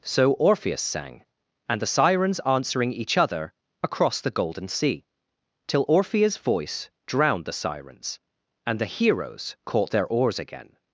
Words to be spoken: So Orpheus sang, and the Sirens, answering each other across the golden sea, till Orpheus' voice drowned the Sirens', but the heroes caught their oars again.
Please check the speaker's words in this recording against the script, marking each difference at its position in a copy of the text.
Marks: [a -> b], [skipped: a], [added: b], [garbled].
So Orpheus sang, and the Sirens, answering each other across the golden sea, till Orpheus' voice drowned the Sirens', [but -> and] the heroes caught their oars again.